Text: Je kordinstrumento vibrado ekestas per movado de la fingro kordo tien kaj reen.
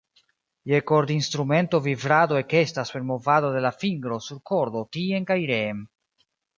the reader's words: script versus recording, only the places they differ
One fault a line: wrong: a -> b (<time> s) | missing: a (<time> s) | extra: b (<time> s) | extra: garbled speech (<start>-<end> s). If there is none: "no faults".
extra: sur (4.3 s)